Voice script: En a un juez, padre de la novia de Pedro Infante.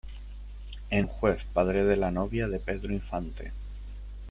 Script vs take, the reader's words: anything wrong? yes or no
no